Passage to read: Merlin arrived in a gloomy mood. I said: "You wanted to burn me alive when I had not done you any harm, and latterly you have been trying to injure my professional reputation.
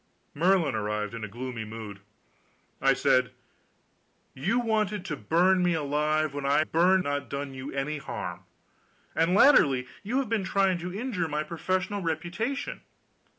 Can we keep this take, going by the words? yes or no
no